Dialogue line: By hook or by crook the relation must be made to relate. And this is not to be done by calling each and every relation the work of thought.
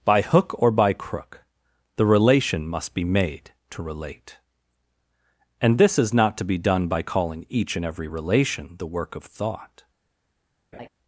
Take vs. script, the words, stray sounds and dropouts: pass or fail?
fail